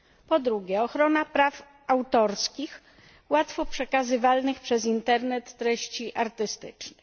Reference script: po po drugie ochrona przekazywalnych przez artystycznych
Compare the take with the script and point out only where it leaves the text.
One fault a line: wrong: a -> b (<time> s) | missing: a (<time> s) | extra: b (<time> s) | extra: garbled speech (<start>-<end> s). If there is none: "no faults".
missing: po (0.4 s)
extra: praw autorskich łatwo (1.2 s)
extra: internet treści (4.8 s)